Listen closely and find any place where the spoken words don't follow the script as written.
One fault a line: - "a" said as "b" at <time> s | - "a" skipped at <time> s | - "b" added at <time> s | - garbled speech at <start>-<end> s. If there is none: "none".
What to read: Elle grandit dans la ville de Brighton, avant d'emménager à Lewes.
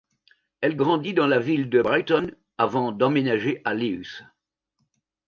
none